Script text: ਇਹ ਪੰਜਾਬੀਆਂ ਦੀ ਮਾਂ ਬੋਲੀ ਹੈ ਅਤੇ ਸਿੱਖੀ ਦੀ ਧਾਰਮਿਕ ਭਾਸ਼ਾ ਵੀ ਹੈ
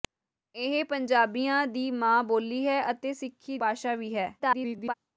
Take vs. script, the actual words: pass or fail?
fail